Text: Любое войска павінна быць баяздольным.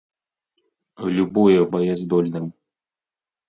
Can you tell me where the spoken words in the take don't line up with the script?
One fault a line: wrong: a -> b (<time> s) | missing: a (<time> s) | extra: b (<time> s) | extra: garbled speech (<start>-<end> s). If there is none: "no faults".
missing: войска павінна быць (1.6 s)